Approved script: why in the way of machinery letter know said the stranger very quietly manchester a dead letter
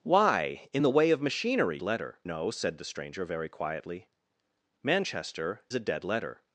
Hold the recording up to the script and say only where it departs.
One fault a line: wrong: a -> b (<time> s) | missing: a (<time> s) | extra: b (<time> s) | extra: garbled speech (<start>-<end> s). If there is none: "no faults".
no faults